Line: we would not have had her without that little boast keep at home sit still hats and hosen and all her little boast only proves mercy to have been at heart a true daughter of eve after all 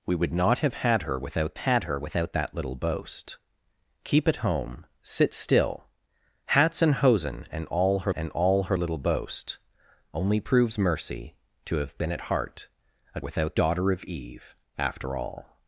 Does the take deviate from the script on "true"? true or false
true